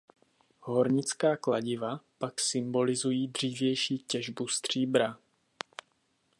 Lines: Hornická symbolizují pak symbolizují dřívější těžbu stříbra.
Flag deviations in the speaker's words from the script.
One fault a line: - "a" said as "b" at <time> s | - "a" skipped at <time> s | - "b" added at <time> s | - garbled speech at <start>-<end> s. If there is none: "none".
- "symbolizují" said as "kladiva" at 1.4 s